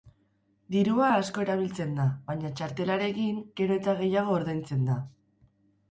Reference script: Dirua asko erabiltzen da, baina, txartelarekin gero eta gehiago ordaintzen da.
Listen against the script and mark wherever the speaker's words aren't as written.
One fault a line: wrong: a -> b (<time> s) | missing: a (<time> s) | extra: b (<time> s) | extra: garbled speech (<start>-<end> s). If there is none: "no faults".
no faults